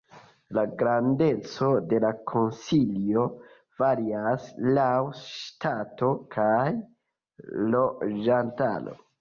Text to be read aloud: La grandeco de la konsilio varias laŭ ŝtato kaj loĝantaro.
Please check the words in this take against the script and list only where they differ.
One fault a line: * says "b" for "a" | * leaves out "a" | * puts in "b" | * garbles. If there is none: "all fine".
all fine